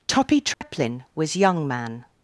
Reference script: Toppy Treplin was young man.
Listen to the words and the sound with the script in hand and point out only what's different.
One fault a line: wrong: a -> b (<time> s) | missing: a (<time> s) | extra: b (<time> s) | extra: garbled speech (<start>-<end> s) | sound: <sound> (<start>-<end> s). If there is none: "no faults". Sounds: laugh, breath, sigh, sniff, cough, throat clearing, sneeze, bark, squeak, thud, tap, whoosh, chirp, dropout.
sound: dropout (0.5-0.6 s)